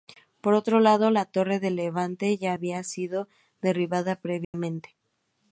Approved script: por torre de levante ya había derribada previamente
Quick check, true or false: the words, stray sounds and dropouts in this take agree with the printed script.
false